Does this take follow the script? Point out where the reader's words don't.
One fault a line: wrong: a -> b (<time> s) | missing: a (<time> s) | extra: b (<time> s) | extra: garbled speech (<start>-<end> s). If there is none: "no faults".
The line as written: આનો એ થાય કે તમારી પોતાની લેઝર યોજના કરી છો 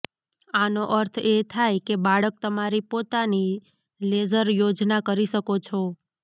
extra: અર્થ (0.9 s)
extra: બાળક (2.1 s)
extra: શકો (5.3 s)